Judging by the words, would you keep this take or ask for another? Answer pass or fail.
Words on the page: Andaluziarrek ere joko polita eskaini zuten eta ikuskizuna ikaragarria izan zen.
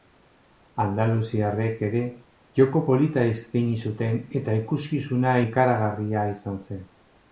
pass